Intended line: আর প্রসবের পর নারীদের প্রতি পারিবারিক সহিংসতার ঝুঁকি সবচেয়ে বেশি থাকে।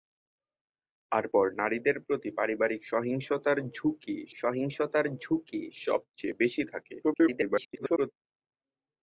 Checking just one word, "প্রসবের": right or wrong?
wrong